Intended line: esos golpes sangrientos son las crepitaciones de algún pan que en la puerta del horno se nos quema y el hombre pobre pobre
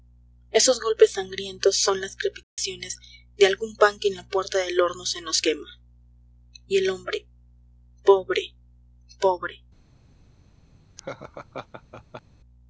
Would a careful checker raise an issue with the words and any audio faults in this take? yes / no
yes